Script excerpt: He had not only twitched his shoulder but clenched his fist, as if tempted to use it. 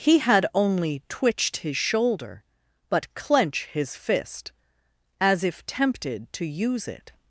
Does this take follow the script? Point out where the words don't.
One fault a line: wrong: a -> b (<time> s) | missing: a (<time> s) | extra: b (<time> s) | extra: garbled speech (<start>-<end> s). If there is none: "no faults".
missing: not (0.5 s)
wrong: clenched -> clench (3.1 s)